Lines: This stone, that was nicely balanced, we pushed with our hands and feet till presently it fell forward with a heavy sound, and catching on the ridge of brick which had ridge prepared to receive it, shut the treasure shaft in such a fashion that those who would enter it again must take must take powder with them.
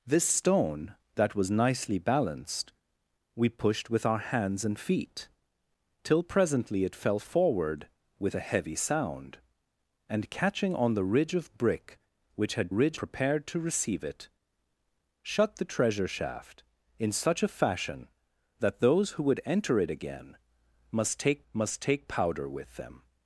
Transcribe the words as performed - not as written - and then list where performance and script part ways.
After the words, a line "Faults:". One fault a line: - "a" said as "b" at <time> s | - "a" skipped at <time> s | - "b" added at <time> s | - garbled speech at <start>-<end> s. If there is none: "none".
This stone, that was nicely balanced, we pushed with our hands and feet till presently it fell forward with a heavy sound, and catching on the ridge of brick which had ridge prepared to receive it, shut the treasure shaft in such a fashion that those who would enter it again must take must take powder with them.
Faults:
none